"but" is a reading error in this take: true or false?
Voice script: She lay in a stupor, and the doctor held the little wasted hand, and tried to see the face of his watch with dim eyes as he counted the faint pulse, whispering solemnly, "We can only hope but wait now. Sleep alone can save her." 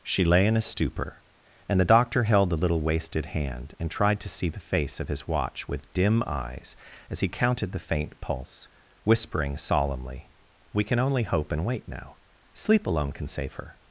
true